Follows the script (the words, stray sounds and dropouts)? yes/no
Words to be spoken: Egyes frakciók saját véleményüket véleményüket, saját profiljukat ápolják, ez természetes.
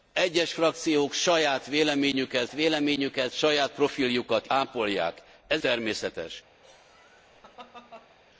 no